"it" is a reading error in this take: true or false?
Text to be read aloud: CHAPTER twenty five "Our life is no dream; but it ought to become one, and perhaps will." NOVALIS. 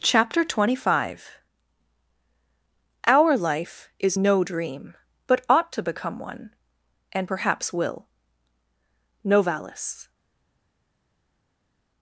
true